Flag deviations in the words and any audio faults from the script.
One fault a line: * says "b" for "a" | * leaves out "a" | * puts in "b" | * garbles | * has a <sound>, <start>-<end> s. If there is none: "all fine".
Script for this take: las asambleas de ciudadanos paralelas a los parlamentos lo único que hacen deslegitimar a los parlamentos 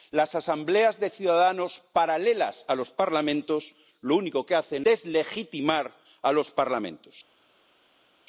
all fine